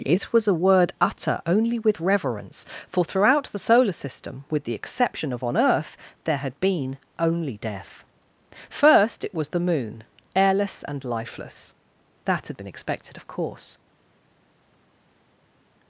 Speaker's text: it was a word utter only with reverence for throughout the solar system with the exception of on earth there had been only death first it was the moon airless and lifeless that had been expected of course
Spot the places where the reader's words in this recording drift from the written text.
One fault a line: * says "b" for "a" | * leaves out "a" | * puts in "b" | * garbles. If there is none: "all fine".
all fine